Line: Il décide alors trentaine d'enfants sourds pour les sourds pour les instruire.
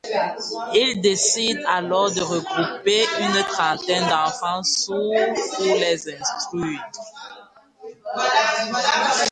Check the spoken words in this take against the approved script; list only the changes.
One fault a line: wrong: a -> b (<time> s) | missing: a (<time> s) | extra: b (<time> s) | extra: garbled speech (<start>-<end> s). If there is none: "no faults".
wrong: trentaine d'enfants sourds pour les -> de regrouper une trentaine d'enfants (2.1 s)